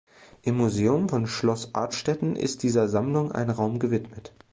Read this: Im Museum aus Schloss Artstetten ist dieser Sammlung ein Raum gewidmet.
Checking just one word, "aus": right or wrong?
wrong